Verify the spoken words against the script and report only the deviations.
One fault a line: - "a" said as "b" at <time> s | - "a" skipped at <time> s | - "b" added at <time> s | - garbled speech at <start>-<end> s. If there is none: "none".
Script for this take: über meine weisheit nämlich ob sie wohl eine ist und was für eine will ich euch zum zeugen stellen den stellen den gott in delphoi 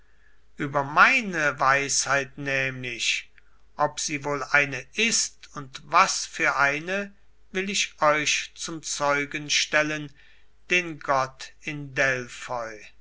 - "stellen den" skipped at 11.0 s